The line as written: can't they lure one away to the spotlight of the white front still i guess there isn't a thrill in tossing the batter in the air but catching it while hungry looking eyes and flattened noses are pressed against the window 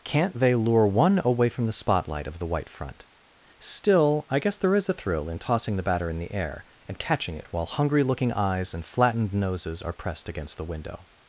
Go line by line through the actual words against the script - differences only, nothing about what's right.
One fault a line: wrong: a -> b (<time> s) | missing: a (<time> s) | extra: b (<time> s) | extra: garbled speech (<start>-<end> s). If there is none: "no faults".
wrong: to -> from (1.5 s)
wrong: isn't -> is (4.7 s)
wrong: but -> and (6.9 s)